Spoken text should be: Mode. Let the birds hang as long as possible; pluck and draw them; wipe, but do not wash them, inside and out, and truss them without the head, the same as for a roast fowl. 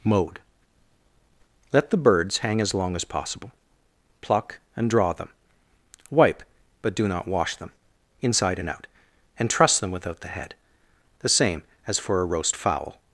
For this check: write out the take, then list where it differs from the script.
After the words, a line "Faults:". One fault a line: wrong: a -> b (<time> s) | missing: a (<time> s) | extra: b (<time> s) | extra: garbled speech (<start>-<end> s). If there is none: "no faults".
Mode. Let the birds hang as long as possible; pluck and draw them; wipe, but do not wash them, inside and out, and truss them without the head, the same as for a roast fowl.
Faults:
no faults